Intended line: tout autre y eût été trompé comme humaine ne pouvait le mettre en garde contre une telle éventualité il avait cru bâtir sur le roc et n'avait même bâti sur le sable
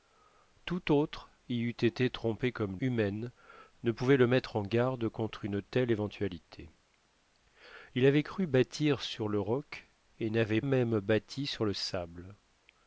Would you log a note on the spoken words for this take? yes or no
no